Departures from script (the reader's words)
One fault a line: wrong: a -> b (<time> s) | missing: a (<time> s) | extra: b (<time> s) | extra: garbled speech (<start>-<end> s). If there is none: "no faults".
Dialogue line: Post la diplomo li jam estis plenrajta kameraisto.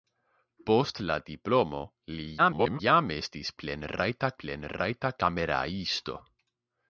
extra: garbled speech (2.4-2.8 s)
extra: plenrajta (4.4 s)